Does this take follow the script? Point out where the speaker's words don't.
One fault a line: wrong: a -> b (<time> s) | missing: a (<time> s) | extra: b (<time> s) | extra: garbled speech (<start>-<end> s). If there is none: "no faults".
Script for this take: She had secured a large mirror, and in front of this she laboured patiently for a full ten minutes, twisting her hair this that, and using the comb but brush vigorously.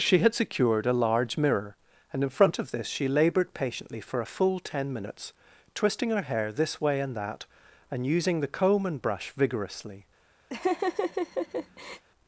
extra: way and (6.8 s)
wrong: but -> and (8.9 s)